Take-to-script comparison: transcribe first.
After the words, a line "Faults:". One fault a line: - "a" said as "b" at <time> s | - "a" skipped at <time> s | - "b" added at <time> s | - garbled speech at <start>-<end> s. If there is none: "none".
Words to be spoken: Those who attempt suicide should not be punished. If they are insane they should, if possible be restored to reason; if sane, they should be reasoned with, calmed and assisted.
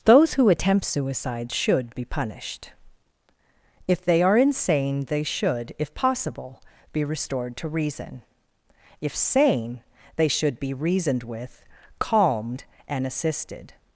Those who attempt suicide should be punished. If they are insane they should, if possible be restored to reason; if sane, they should be reasoned with, calmed and assisted.
Faults:
- "not" skipped at 1.9 s